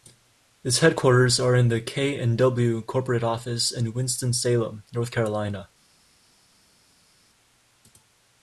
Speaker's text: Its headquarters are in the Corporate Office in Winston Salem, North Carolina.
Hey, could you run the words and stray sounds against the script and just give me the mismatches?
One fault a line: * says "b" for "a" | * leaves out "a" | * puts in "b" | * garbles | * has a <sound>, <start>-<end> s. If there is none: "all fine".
* puts in "K and W"